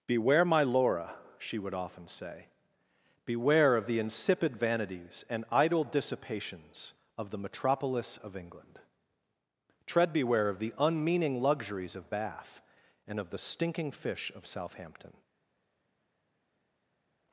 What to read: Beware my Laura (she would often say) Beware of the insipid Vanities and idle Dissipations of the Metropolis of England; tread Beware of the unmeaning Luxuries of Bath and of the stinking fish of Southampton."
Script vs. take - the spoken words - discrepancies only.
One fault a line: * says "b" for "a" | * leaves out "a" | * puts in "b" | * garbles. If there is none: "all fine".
all fine